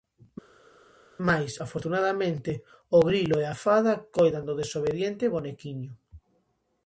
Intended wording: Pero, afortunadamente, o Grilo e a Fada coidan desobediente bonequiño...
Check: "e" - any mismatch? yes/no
no